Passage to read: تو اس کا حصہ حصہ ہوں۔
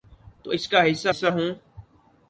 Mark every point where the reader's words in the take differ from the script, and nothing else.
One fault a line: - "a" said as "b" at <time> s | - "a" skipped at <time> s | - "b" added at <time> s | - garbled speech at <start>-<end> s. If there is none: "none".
none